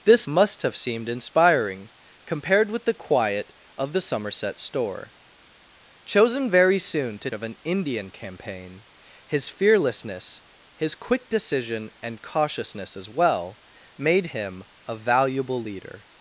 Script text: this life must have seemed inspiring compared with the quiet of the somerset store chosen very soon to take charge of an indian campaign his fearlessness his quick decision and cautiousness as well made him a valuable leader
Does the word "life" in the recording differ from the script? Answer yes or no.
yes